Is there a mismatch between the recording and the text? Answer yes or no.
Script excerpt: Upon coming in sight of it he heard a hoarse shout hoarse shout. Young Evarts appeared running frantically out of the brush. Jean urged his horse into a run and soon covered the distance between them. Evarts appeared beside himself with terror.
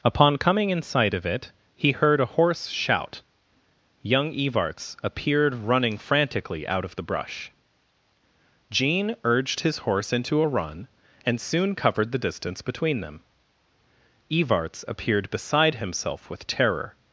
yes